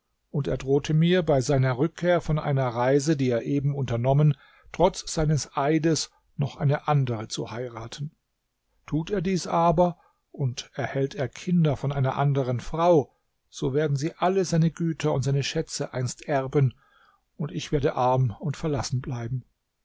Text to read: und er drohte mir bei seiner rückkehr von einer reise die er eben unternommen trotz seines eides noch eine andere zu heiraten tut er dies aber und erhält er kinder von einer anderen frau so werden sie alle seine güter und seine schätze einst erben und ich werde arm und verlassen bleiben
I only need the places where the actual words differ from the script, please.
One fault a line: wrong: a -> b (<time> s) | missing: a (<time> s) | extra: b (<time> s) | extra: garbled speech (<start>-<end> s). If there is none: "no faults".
no faults